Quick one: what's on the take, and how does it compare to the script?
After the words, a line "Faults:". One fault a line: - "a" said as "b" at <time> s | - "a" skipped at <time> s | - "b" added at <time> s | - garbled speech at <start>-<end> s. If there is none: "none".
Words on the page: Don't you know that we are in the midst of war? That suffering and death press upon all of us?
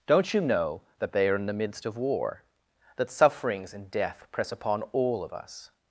Don't you know that they are in the midst of war? That sufferings and death press upon all of us?
Faults:
- "we" said as "they" at 1.1 s
- "suffering" said as "sufferings" at 3.1 s